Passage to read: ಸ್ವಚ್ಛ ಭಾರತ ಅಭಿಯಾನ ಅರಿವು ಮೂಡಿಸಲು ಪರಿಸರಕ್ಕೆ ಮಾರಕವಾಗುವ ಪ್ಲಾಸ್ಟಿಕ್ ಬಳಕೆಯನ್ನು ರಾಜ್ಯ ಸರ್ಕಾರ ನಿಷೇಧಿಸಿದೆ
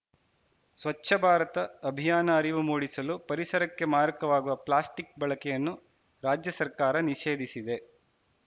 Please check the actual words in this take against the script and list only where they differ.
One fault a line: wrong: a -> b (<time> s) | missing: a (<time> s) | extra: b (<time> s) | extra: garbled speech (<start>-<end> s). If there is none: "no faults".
no faults